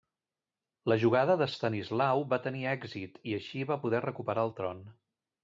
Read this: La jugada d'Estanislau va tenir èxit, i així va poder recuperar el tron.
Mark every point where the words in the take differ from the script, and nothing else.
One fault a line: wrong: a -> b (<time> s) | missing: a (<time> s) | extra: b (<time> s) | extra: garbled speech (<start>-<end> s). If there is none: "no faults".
no faults